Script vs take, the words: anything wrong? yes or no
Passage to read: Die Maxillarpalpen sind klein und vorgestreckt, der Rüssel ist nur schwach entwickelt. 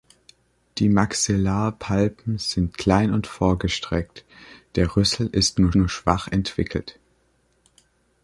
yes